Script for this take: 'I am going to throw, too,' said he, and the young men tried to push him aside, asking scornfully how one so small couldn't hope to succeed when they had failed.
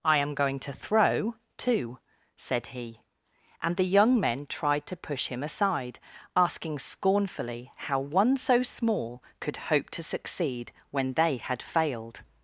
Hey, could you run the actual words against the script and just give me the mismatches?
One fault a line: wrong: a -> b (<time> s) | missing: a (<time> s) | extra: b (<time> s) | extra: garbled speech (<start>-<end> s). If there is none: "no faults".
wrong: couldn't -> could (9.4 s)